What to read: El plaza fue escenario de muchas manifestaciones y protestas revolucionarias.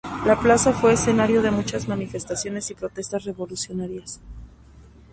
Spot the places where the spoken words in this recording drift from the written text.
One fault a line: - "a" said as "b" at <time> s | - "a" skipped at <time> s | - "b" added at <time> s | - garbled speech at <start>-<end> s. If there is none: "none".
- "El" said as "La" at 0.2 s